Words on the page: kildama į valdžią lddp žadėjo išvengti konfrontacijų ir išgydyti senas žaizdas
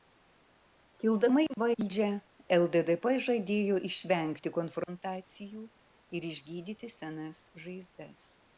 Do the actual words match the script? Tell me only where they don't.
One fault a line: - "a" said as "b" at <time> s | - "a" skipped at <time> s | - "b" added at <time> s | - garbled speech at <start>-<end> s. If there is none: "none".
none